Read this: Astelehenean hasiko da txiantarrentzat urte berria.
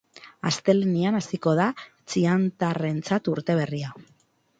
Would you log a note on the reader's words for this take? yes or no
no